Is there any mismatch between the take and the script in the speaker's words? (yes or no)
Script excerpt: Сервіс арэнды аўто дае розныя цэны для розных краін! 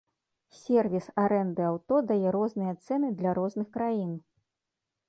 no